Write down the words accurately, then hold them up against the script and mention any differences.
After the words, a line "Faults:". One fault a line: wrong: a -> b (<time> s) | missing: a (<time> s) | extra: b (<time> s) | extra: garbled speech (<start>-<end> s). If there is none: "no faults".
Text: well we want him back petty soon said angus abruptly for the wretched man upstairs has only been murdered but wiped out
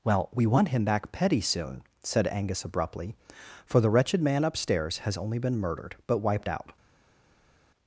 well we want him back petty soon said angus abruptly for the wretched man upstairs has only been murdered but wiped out
Faults:
no faults